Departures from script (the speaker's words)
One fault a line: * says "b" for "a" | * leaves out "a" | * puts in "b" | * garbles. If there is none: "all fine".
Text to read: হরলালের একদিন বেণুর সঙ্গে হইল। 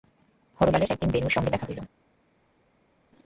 * puts in "দেখা"